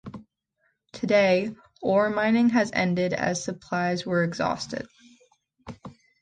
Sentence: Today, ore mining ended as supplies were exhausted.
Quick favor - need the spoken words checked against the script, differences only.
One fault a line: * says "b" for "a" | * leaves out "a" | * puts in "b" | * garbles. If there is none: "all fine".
* puts in "has"